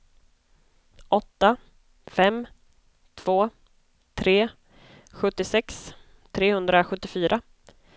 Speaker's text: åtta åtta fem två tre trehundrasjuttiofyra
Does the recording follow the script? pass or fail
fail